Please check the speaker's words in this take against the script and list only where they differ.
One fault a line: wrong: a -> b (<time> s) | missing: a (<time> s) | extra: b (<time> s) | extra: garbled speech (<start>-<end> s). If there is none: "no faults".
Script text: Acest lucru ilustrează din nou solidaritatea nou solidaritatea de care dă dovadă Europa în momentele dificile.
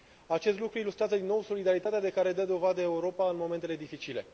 missing: nou solidaritatea (2.0 s)